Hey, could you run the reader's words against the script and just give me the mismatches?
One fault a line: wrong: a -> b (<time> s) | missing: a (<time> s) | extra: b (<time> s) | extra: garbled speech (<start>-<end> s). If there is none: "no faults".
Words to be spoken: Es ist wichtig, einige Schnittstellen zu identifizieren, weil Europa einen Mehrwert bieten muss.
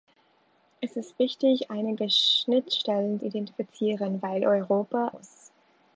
missing: zu (3.2 s)
missing: einen Mehrwert bieten (5.1 s)